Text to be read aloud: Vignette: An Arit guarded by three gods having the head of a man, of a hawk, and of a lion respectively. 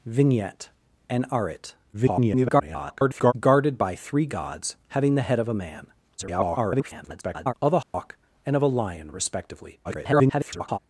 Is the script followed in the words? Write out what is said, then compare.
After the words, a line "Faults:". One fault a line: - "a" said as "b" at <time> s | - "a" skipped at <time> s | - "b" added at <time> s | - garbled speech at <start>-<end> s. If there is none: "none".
Vignette: An Arit [garbled] guarded by three gods having the head of a man, [garbled] of a hawk, and of a lion respectively. [garbled]
Faults:
- garbled speech at 1.9-3.3 s
- garbled speech at 6.2-7.5 s
- garbled speech at 9.8-10.8 s